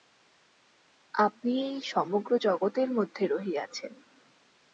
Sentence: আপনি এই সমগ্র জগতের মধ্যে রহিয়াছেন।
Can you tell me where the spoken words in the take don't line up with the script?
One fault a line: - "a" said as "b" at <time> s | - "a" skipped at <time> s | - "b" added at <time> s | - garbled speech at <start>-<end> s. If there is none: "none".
none